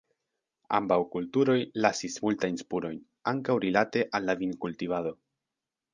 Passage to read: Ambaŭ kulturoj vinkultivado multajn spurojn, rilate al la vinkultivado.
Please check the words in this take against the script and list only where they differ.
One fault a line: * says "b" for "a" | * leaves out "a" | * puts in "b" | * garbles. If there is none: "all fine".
* says "lasis" for "vinkultivado"
* puts in "ankaŭ"